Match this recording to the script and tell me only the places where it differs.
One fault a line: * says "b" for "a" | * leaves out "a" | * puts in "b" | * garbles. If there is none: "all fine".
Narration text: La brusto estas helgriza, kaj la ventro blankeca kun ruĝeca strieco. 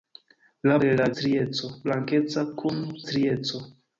* leaves out "brusto estas helgriza"
* says "strieco" for "ventro"
* leaves out "ruĝeca"